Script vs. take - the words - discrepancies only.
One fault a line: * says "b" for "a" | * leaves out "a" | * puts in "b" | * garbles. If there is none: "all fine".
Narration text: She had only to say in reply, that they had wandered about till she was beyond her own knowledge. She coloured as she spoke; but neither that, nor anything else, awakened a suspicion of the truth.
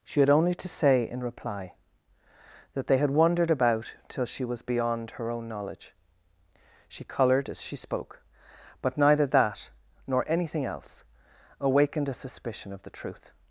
all fine